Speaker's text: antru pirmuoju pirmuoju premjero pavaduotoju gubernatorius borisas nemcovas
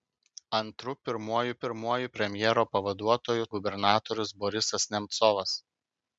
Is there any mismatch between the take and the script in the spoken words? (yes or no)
no